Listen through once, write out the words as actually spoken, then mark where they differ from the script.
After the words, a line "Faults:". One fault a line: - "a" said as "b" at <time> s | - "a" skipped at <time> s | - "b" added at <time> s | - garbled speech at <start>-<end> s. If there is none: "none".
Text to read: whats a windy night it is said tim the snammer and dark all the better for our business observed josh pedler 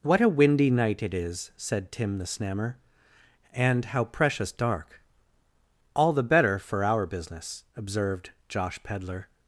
what a windy night it is said tim the snammer and how precious dark all the better for our business observed josh pedler
Faults:
- "whats" said as "what" at 0.0 s
- "how precious" added at 3.9 s